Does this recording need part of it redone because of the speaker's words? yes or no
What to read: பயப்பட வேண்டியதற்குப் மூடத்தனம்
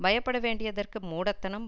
no